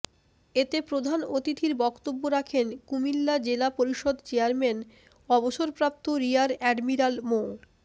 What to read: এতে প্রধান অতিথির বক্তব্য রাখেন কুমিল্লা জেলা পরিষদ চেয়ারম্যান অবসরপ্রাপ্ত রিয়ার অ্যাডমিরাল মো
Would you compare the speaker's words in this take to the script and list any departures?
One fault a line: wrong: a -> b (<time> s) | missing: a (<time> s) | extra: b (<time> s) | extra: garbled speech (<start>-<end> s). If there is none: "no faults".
no faults